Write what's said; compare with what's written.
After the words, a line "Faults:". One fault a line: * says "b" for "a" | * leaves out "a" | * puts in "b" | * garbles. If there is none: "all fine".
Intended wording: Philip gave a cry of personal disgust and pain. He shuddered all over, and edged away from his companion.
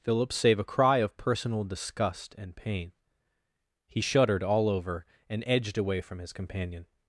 Philip save a cry of personal disgust and pain. He shuddered all over, and edged away from his companion.
Faults:
* says "save" for "gave"